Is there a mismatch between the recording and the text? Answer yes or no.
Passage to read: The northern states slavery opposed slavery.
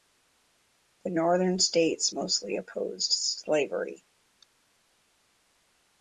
yes